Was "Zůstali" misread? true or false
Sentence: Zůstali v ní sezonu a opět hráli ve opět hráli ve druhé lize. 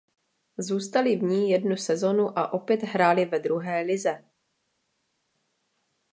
false